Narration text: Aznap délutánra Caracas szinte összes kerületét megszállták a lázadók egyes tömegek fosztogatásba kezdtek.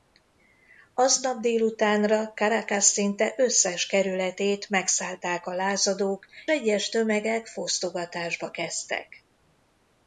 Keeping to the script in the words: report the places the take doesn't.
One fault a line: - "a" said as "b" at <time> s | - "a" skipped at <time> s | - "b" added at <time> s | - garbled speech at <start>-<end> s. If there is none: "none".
none